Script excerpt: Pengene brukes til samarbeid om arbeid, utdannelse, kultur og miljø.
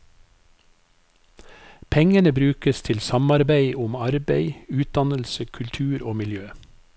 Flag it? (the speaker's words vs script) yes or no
no